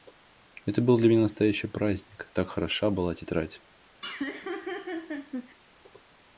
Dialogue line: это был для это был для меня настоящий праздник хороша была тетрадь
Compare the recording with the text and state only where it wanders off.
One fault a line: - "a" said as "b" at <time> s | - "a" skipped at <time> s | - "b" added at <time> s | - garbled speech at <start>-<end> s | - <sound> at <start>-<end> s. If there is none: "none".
- "это был для" skipped at 1.1 s
- "так" added at 2.3 s
- laugh at 4.0-5.6 s